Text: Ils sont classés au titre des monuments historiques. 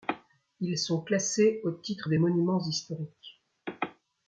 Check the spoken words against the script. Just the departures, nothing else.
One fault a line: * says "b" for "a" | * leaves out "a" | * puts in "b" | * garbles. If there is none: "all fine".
all fine